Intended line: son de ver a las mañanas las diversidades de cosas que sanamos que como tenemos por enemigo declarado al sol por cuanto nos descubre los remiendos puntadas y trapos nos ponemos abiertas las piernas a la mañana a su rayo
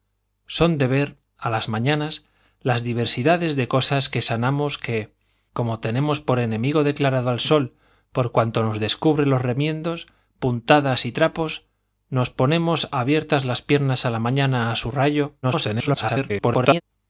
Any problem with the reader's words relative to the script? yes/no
yes